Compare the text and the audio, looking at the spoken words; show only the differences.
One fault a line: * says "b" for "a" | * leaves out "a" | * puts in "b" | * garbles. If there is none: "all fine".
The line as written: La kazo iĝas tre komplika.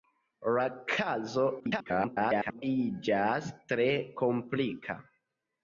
* garbles